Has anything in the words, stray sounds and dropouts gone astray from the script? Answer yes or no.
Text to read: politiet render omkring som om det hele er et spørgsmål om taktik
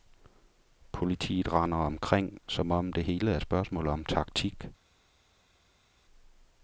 no